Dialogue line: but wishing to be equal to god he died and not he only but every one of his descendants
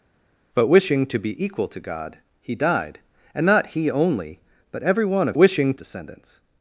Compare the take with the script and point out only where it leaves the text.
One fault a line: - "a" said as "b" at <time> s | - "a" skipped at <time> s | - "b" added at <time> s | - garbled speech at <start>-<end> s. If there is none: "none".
- "his" said as "wishing" at 5.4 s